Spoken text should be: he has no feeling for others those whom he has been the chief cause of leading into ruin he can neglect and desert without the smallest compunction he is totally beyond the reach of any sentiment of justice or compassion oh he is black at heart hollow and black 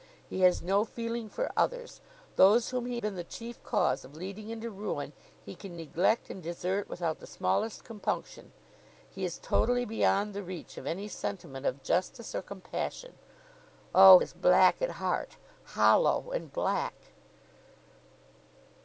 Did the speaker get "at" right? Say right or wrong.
right